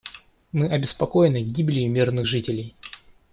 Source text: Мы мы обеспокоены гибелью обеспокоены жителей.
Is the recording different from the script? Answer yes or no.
yes